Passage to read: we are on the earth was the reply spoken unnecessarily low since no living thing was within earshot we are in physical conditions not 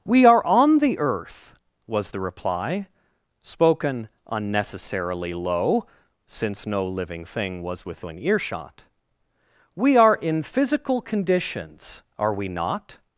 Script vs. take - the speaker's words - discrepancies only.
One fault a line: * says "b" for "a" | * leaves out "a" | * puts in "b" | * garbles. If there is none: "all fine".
* puts in "are we"